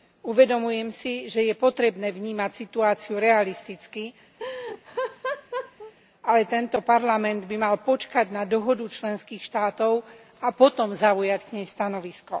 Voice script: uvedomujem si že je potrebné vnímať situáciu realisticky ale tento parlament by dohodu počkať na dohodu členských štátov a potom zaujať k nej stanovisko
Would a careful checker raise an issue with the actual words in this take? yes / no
yes